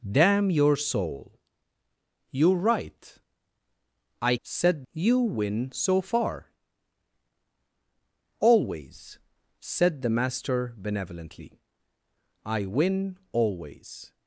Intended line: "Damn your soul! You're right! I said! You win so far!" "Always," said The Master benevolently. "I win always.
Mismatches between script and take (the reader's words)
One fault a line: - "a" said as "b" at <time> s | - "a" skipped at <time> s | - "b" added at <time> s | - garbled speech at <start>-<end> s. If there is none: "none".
none